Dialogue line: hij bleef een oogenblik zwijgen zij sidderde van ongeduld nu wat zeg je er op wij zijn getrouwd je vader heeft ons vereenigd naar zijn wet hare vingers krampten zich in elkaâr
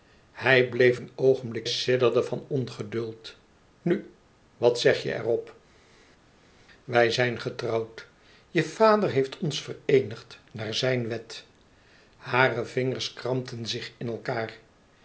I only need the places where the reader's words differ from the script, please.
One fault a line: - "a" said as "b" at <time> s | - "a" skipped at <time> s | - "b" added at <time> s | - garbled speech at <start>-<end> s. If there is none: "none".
- "zwijgen zij" skipped at 1.7 s